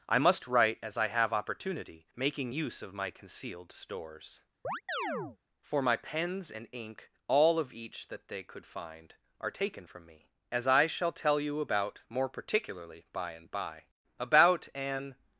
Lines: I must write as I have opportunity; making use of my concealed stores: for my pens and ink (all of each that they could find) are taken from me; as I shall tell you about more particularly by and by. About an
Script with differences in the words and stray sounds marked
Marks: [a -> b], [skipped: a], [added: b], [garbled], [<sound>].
I must write as I have opportunity; making use of my concealed stores: [chirp] for my pens and ink (all of each that they could find) are taken from me; as I shall tell you about more particularly by and by. About an